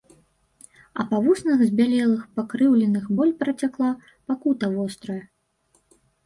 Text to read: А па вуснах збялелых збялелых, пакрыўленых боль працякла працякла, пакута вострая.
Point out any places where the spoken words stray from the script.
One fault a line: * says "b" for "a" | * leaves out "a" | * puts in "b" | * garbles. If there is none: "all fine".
* leaves out "збялелых"
* leaves out "працякла"